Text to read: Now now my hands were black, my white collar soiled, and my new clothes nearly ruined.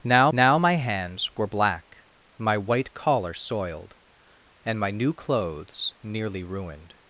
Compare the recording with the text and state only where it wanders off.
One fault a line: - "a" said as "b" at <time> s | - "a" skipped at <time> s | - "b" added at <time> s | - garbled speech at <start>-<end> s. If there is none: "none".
none